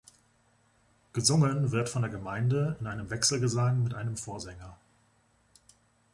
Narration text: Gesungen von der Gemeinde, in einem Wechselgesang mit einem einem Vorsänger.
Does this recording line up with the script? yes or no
no